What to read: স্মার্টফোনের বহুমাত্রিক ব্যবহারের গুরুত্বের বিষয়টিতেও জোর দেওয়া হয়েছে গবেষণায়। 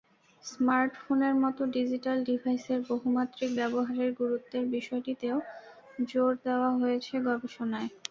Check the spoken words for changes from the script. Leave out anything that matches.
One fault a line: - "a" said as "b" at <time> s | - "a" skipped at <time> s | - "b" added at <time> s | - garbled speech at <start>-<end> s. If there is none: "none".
- "মতো ডিজিটাল ডিভাইসের" added at 1.4 s